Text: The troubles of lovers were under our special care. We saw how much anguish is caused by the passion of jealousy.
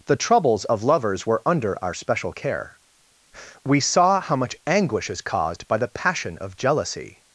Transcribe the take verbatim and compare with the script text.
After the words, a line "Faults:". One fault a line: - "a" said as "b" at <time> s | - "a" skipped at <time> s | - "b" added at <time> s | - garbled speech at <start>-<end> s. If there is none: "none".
The troubles of lovers were under our special care. We saw how much anguish is caused by the passion of jealousy.
Faults:
none